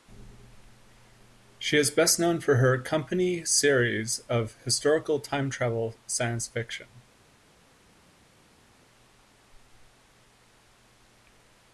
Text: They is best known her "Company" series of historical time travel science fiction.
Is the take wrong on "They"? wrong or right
wrong